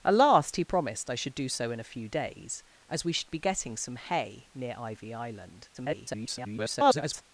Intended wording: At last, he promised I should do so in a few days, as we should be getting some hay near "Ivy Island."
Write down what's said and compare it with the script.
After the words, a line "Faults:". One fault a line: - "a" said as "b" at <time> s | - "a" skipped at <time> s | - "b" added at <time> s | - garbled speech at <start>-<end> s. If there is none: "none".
At last, he promised I should do so in a few days, as we should be getting some hay near "Ivy Island." [garbled]
Faults:
- garbled speech at 5.7-7.2 s